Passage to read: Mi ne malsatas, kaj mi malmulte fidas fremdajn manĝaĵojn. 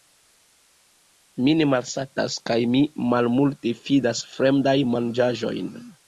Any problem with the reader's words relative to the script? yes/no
no